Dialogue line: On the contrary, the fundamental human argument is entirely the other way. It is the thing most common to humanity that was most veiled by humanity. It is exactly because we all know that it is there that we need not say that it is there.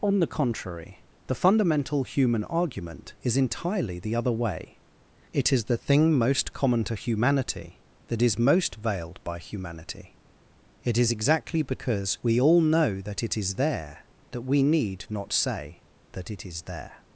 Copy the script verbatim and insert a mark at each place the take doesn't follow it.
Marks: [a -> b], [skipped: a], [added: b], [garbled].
On the contrary, the fundamental human argument is entirely the other way. It is the thing most common to humanity that [was -> is] most veiled by humanity. It is exactly because we all know that it is there that we need not say that it is there.